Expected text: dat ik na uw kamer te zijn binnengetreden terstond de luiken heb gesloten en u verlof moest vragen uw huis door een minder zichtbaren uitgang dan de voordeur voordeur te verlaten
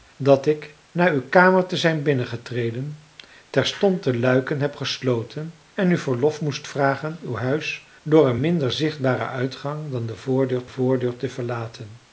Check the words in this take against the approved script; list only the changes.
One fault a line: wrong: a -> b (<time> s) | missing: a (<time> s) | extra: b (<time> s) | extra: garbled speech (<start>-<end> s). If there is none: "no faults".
no faults